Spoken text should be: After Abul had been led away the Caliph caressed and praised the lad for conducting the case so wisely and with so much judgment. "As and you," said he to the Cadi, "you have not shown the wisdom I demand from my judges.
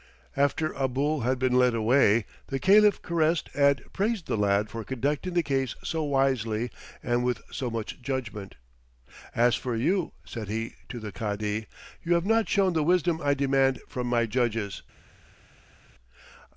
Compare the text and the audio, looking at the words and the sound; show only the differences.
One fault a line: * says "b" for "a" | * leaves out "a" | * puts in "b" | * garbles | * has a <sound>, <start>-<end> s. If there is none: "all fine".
* says "for" for "and"